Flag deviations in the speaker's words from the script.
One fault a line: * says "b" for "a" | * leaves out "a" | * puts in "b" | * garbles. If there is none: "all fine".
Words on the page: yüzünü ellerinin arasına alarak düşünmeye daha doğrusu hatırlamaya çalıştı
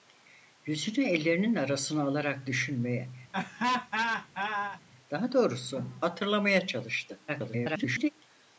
* garbles